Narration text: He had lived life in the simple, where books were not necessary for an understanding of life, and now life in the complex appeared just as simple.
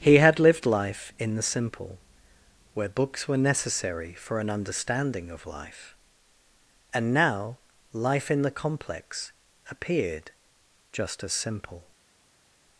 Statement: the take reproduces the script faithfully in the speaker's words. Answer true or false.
false